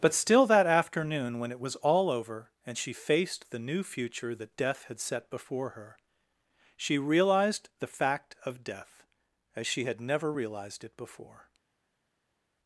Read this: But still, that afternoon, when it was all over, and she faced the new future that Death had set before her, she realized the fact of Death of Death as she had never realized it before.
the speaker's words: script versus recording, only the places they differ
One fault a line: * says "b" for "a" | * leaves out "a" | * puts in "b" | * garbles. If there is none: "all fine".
* leaves out "of Death"